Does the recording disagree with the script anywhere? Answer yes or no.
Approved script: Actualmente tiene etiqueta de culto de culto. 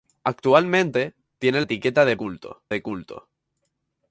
no